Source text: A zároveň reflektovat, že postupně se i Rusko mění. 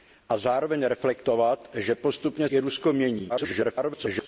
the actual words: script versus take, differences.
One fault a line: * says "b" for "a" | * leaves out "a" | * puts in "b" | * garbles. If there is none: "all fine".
* leaves out "se"
* garbles